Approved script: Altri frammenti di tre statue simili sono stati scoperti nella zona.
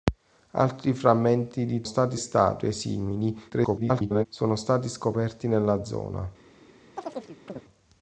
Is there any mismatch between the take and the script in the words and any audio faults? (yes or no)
yes